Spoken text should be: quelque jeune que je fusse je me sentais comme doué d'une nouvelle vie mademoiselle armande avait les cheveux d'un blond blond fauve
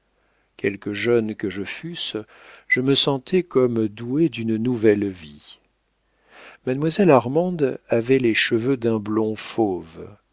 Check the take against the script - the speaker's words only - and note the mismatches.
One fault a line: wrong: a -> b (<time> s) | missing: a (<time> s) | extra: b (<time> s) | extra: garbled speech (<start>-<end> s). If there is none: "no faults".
missing: blond (9.3 s)